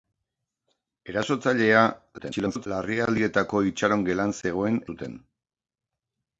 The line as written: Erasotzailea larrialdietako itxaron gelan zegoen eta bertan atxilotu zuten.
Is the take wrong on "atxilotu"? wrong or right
wrong